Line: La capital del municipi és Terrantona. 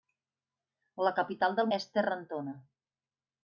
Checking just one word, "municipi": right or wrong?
wrong